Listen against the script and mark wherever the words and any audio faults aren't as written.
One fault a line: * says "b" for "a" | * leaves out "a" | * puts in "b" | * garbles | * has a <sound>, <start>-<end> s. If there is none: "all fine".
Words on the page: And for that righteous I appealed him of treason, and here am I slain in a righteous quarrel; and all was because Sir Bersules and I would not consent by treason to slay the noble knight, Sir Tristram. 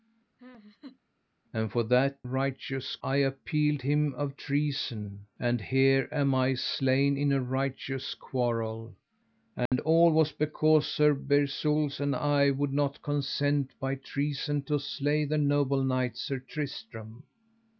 * has a laugh, 0.4-1.0 s
* has a dropout, 9.7-9.7 s